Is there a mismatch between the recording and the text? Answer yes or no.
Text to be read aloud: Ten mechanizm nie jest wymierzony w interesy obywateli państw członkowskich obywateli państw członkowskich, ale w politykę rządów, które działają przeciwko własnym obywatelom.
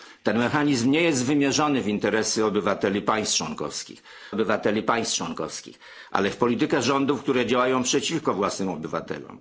no